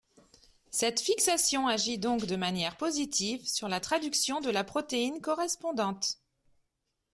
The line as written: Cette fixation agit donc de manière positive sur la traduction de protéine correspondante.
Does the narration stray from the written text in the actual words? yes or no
yes